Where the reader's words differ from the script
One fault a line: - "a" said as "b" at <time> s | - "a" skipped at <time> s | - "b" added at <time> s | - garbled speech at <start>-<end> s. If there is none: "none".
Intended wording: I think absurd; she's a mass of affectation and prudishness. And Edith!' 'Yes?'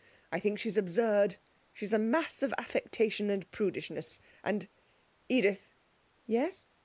- "she's" added at 0.6 s